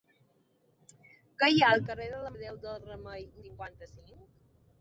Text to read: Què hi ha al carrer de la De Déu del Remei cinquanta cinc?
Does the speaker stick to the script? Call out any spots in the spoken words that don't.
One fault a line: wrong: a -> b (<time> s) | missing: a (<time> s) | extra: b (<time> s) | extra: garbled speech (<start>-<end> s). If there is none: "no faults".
no faults